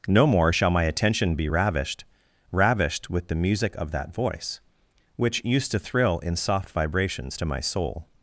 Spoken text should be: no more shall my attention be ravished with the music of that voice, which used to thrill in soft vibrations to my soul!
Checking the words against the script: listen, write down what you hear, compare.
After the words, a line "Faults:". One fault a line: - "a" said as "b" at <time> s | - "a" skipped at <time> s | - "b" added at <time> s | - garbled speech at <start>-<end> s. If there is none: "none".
no more shall my attention be ravished ravished with the music of that voice, which used to thrill in soft vibrations to my soul!
Faults:
- "ravished" added at 2.5 s